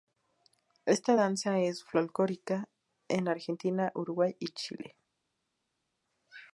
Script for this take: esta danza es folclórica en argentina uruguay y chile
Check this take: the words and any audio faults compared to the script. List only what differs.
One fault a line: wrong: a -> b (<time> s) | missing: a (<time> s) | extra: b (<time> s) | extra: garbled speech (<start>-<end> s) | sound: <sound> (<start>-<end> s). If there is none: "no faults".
no faults